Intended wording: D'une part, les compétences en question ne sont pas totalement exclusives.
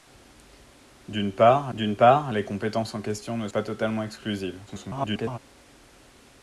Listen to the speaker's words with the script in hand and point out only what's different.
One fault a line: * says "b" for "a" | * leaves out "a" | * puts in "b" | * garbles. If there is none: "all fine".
* puts in "d'une part"
* leaves out "sont"
* garbles